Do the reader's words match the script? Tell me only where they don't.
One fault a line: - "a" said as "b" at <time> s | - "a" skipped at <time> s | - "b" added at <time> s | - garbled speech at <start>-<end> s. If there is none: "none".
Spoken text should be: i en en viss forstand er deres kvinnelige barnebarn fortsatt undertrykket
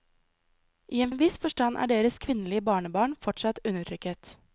none